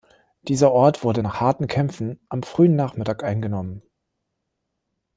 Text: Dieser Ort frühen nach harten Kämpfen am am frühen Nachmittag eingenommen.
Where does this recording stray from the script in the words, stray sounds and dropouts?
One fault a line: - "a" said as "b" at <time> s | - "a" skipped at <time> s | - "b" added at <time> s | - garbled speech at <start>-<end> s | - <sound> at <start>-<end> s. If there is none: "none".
- "frühen" said as "wurde" at 1.0 s
- "am" skipped at 2.4 s